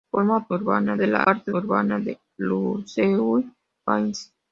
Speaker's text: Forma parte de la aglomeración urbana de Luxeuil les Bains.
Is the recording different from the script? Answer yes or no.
yes